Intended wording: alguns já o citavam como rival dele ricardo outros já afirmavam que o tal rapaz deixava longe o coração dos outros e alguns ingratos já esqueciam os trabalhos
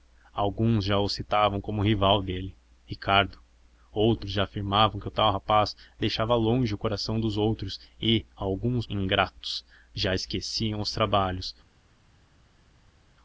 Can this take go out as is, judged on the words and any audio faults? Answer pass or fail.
pass